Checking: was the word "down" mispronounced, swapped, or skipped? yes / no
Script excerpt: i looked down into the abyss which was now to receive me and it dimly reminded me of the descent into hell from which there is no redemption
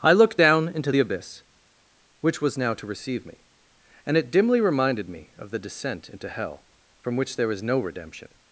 no